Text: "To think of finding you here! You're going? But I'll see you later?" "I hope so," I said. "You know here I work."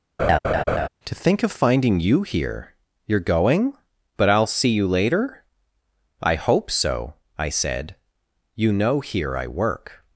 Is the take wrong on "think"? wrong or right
right